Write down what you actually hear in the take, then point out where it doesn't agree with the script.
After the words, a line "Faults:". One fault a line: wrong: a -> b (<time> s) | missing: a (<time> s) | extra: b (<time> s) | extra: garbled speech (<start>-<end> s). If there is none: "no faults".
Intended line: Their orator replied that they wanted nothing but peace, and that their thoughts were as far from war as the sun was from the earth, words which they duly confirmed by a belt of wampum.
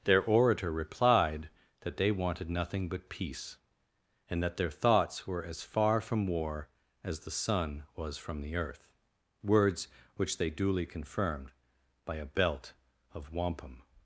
Their orator replied that they wanted nothing but peace, and that their thoughts were as far from war as the sun was from the earth, words which they duly confirmed by a belt of wampum.
Faults:
no faults